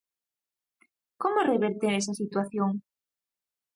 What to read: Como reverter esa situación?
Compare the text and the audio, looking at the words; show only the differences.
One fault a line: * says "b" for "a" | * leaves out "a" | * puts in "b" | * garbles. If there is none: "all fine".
all fine